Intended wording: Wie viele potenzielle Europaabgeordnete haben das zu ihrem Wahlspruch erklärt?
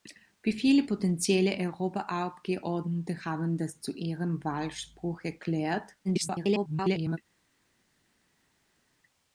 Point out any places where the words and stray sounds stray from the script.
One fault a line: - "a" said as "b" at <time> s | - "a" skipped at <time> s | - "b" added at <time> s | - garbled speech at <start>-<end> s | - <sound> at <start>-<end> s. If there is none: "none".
- garbled speech at 6.0-7.2 s